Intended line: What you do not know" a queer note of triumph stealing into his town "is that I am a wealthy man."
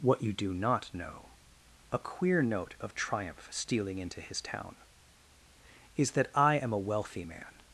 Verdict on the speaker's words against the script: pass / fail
pass